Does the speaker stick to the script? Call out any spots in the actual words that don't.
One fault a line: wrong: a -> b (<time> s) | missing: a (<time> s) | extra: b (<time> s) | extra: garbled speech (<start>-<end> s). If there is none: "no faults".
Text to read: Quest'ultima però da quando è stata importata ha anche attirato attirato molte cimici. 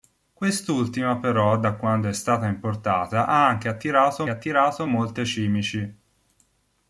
no faults